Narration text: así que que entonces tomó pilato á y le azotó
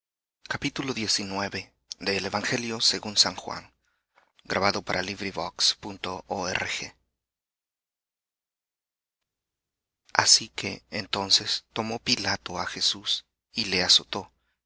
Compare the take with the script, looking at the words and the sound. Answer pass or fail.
fail